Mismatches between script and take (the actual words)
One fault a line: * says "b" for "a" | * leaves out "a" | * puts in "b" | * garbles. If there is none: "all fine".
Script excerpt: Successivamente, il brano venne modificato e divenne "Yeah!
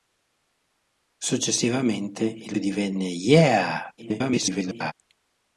* leaves out "brano venne modificato"
* garbles